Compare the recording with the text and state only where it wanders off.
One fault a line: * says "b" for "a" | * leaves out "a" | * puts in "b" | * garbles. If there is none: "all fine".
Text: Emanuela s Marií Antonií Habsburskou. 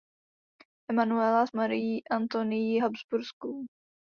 all fine